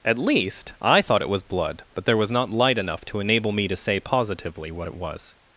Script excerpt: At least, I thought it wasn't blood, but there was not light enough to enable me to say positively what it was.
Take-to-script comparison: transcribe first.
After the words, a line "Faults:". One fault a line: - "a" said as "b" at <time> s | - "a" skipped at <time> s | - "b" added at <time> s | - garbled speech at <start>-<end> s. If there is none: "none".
At least, I thought it was blood, but there was not light enough to enable me to say positively what it was.
Faults:
- "wasn't" said as "was" at 1.3 s